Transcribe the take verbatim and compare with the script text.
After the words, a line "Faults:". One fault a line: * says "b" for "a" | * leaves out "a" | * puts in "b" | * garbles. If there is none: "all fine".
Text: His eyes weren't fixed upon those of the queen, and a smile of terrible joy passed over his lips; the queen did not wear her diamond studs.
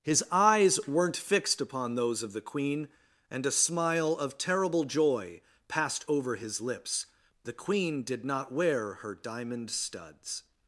His eyes weren't fixed upon those of the queen, and a smile of terrible joy passed over his lips; the queen did not wear her diamond studs.
Faults:
all fine